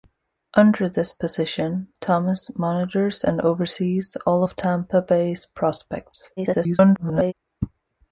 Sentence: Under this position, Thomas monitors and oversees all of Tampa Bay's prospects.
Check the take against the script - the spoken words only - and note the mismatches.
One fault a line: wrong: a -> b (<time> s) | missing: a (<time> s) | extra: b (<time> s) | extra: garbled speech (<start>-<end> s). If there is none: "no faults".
extra: garbled speech (6.4-7.3 s)